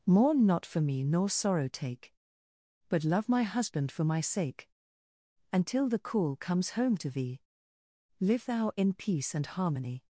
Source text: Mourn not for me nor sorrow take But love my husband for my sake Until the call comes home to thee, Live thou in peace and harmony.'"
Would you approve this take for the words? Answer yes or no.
yes